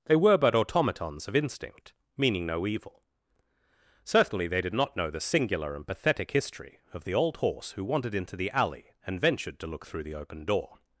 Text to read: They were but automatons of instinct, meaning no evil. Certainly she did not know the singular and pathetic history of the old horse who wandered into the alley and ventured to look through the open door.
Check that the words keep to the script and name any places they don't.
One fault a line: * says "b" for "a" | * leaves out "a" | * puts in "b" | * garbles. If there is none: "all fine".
* says "they" for "she"